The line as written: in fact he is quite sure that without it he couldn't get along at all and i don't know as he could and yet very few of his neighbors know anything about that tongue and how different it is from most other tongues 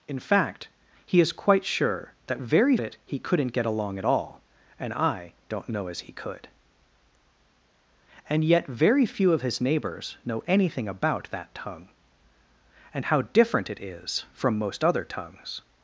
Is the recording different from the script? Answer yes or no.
yes